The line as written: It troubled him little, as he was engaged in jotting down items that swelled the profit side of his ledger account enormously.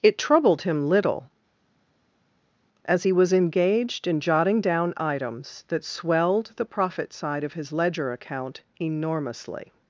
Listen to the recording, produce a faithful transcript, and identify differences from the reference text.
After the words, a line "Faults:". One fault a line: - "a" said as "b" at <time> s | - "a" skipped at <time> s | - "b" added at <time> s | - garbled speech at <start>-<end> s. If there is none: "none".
It troubled him little, as he was engaged in jotting down items that swelled the profit side of his ledger account enormously.
Faults:
none